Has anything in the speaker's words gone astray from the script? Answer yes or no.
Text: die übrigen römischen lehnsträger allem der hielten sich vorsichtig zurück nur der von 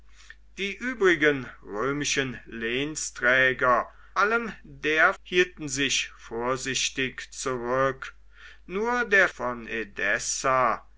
no